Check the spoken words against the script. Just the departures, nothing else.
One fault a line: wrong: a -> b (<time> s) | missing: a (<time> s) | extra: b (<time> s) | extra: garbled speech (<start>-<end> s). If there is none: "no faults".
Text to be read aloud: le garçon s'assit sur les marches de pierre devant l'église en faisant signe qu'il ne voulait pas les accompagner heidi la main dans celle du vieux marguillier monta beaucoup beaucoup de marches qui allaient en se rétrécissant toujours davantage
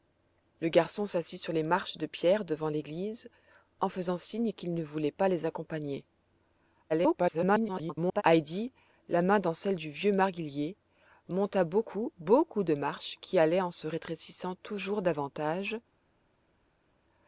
extra: garbled speech (6.9-8.2 s)